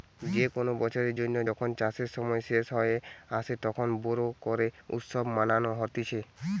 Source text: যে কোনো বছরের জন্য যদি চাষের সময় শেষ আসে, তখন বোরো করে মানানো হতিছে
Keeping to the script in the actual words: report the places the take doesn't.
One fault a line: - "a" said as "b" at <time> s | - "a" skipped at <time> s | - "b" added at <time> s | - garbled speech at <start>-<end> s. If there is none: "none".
- "যদি" said as "যখন" at 1.5 s
- "হয়ে" added at 2.7 s
- "উৎসব" added at 4.9 s